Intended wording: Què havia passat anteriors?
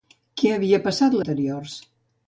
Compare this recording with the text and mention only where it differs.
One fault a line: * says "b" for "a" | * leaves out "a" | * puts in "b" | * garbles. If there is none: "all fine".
all fine